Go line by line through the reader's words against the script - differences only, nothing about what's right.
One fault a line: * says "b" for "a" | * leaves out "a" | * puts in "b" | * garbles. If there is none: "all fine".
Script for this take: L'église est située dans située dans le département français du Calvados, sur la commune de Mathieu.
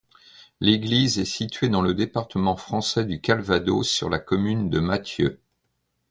* leaves out "située dans"